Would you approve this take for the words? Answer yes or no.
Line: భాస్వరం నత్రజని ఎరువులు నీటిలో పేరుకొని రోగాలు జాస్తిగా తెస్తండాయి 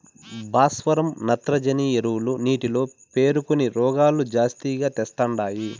yes